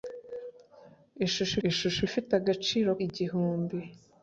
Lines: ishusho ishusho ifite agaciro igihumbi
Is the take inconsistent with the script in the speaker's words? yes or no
no